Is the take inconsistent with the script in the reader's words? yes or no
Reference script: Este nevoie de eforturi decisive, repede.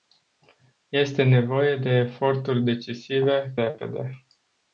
no